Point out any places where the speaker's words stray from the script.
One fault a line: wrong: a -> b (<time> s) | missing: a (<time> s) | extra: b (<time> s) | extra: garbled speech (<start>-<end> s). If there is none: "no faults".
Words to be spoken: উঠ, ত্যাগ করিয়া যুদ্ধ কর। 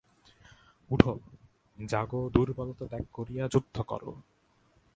extra: জাগো দুর্বলতা (1.8 s)